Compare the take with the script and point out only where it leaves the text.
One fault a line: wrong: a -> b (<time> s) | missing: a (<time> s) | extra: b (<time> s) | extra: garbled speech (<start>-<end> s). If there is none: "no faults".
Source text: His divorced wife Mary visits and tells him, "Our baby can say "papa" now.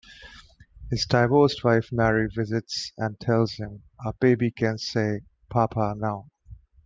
no faults